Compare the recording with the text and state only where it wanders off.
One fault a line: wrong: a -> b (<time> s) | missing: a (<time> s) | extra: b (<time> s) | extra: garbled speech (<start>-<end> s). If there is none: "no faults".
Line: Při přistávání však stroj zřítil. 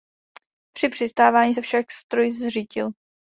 extra: se (1.5 s)